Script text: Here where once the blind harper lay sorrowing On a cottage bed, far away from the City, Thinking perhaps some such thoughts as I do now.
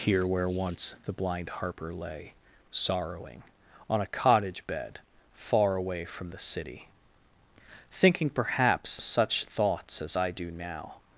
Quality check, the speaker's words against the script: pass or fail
fail